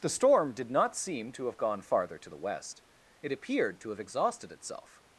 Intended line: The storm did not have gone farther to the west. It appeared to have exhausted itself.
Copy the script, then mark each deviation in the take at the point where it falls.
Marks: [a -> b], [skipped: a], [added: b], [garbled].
The storm did not [added: seem to] have gone farther to the west. It appeared to have exhausted itself.